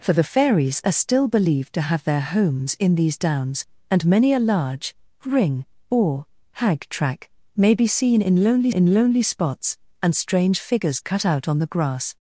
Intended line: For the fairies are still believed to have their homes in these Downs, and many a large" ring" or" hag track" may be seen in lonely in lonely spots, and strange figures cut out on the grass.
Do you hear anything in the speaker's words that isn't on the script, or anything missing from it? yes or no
no